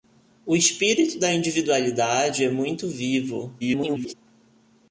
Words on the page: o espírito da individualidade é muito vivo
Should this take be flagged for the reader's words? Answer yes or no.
yes